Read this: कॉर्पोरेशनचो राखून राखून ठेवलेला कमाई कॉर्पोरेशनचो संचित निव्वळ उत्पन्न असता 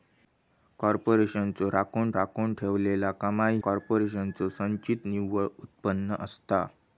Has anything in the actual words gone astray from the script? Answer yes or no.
no